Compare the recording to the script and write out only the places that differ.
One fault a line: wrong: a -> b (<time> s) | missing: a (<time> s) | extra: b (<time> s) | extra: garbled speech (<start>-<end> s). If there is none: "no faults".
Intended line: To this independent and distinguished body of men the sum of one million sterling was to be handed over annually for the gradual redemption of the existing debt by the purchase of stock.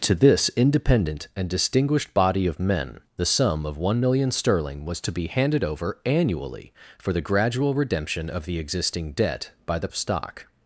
missing: purchase (9.9 s)